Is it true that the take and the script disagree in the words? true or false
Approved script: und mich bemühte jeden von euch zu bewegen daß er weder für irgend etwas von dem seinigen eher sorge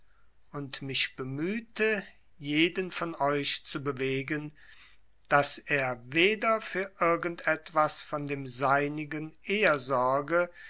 false